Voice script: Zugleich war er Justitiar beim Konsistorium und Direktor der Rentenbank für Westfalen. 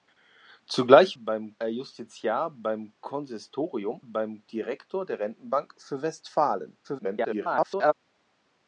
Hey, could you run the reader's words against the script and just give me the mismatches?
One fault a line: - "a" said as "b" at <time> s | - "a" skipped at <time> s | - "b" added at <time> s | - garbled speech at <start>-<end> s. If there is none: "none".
- "war" said as "beim" at 1.1 s
- "und" said as "beim" at 4.0 s
- garbled speech at 6.8-7.9 s